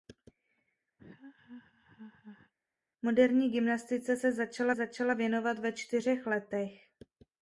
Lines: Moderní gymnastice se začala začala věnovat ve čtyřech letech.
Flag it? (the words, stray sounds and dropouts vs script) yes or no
yes